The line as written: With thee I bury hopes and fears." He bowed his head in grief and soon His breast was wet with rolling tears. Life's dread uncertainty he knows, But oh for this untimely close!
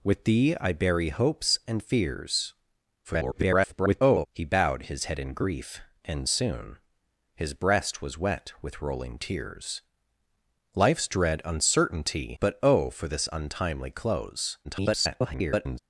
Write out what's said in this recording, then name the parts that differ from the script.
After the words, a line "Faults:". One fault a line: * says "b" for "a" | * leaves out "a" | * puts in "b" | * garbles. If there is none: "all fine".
With thee I bury hopes and fears." [garbled] He bowed his head in grief and soon His breast was wet with rolling tears. Life's dread uncertainty But oh for this untimely close! [garbled]
Faults:
* garbles
* leaves out "he knows"
* garbles